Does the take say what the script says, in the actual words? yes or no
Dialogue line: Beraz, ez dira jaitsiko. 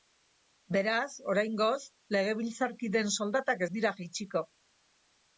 no